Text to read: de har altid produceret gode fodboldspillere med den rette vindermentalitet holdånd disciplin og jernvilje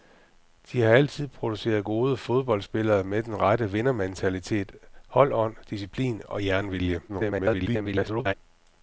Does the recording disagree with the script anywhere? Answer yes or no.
yes